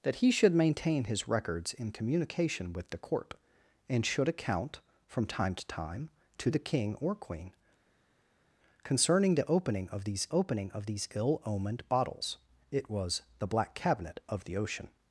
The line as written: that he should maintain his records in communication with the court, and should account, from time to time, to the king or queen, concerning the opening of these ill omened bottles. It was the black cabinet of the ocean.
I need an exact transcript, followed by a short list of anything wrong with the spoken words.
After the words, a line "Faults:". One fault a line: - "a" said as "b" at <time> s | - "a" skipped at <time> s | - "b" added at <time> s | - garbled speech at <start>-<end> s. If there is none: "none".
that he should maintain his records in communication with the court, and should account, from time to time, to the king or queen, concerning the opening of these opening of these ill omened bottles. It was the black cabinet of the ocean.
Faults:
- "opening of these" added at 10.3 s